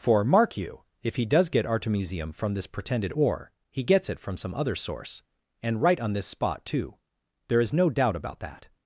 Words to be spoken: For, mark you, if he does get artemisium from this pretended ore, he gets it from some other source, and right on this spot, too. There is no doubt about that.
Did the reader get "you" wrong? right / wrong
right